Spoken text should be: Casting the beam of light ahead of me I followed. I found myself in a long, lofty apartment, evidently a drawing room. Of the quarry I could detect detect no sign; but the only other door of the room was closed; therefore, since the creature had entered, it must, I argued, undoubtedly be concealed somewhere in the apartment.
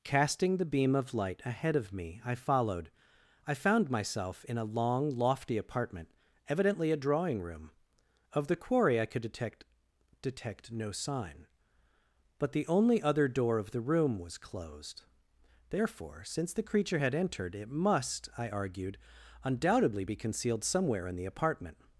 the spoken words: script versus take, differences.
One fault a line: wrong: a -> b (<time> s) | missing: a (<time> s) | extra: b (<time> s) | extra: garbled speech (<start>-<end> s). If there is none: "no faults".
no faults